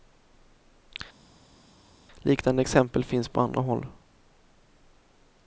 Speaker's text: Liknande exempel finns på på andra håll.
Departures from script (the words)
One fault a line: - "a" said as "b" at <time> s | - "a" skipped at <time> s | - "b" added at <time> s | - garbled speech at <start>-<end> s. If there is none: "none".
- "på" skipped at 3.4 s